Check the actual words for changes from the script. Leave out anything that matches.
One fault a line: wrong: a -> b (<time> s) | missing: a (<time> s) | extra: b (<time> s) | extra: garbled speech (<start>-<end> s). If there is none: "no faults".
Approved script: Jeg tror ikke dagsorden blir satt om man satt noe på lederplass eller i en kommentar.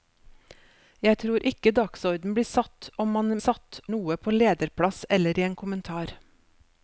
no faults